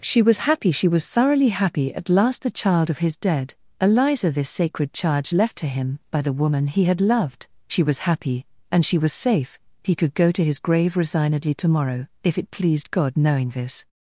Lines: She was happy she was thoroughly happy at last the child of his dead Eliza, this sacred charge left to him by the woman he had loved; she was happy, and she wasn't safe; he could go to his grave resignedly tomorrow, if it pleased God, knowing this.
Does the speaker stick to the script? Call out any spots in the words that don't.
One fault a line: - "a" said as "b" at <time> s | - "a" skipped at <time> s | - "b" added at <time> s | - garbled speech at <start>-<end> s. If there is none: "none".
- "wasn't" said as "was" at 9.0 s